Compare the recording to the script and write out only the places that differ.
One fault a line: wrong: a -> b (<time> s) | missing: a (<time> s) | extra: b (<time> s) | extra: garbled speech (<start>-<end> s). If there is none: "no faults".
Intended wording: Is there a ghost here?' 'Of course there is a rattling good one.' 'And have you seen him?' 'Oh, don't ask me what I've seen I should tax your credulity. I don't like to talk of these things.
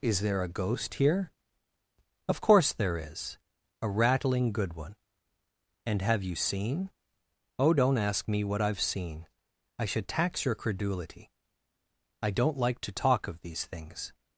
missing: him (6.9 s)